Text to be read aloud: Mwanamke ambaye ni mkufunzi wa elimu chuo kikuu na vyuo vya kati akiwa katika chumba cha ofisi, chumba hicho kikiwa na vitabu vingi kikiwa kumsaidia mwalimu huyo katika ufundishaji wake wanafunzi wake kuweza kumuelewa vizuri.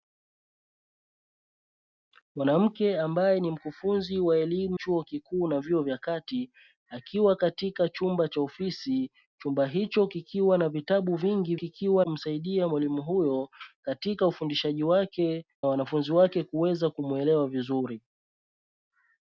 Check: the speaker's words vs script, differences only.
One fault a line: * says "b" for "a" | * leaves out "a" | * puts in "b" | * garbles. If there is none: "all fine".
all fine